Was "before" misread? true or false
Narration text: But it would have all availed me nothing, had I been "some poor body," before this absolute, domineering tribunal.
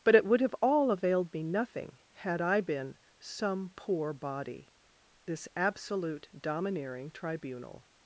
true